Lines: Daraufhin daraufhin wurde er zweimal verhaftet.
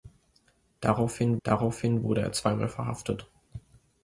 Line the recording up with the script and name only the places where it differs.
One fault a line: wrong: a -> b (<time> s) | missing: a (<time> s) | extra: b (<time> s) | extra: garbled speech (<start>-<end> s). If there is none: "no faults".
no faults